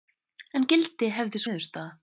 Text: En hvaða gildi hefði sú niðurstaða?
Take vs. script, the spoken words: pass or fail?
fail